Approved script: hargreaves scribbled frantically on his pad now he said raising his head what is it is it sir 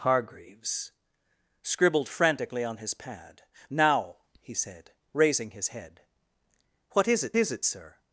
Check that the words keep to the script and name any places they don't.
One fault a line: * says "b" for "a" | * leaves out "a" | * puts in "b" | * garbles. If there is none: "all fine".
all fine